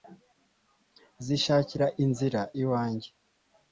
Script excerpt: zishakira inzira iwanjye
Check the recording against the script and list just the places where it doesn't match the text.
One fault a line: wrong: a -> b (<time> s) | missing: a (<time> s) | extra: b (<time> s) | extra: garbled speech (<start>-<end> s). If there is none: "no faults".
no faults